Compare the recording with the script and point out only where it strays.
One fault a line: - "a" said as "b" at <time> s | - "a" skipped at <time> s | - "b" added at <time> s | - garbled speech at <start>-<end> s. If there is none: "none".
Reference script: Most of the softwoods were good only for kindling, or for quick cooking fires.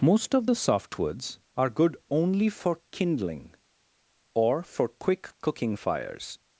- "were" said as "are" at 1.6 s